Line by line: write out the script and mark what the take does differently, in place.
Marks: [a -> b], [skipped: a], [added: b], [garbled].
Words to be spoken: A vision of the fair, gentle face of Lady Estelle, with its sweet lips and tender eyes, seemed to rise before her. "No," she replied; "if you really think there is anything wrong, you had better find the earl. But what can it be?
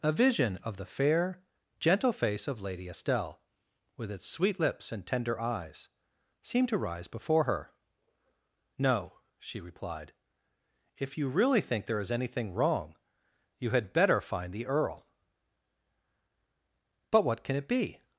A vision of the fair, gentle face of Lady Estelle, with its sweet lips and tender eyes, seemed to rise before her. "No," she replied; "if you really think there is anything wrong, you had better find the earl. But what can it be?